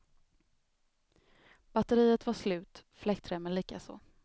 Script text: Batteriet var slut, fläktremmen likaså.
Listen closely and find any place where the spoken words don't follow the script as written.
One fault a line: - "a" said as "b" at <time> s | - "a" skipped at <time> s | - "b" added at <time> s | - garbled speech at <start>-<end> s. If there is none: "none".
none